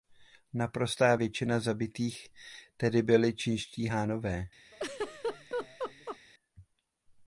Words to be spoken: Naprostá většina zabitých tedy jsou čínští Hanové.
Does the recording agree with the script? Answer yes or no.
no